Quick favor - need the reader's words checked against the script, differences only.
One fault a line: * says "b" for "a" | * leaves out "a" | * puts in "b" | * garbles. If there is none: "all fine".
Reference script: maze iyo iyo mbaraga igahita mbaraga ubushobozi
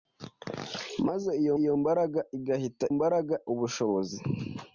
all fine